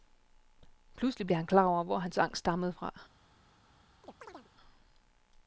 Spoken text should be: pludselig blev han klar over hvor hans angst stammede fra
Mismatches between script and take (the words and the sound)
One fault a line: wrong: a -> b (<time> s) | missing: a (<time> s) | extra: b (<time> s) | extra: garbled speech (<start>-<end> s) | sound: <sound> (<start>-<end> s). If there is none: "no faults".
sound: chirp (4.0-4.5 s)